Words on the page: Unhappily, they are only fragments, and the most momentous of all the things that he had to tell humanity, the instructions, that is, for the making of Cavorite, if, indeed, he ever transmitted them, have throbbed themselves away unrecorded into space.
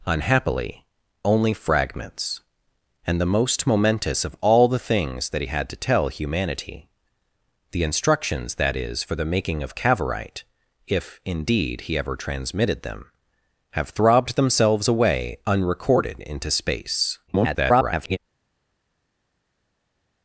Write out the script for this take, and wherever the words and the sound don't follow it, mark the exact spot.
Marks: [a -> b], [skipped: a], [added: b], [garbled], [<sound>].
Unhappily, [skipped: they are] only fragments, and the most momentous of all the things that he had to tell humanity, the instructions, that is, for the making of Cavorite, if, indeed, he ever transmitted them, have throbbed themselves away unrecorded into space. [garbled]